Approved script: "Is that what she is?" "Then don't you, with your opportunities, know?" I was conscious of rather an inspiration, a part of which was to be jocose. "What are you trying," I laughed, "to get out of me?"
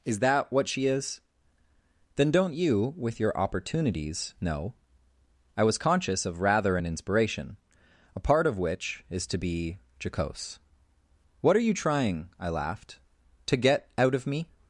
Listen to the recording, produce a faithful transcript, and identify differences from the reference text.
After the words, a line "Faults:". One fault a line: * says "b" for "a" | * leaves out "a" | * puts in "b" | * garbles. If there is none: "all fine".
"Is that what she is?" "Then don't you, with your opportunities, know?" I was conscious of rather an inspiration, a part of which is to be jocose. "What are you trying," I laughed, "to get out of me?"
Faults:
* says "is" for "was"